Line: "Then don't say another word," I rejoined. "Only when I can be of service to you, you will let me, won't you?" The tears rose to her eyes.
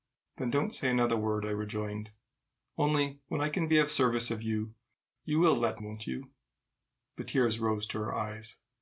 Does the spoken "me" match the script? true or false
false